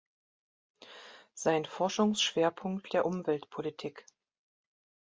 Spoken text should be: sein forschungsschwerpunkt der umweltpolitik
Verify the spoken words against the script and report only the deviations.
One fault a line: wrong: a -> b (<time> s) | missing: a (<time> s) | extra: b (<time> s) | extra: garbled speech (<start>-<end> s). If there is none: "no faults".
no faults